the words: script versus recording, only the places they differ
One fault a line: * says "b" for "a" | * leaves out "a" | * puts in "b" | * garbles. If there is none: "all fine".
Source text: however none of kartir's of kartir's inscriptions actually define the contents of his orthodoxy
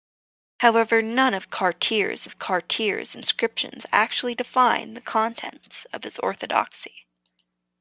all fine